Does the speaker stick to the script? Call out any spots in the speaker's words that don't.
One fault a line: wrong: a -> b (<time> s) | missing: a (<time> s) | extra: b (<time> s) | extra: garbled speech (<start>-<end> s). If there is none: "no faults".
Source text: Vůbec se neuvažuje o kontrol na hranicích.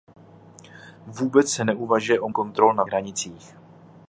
no faults